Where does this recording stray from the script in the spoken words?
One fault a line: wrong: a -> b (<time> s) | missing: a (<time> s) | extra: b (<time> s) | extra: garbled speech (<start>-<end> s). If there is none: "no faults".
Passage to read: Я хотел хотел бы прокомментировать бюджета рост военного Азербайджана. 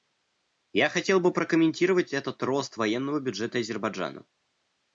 missing: хотел (1.2 s)
wrong: бюджета -> этот (2.1 s)
extra: бюджета (3.2 s)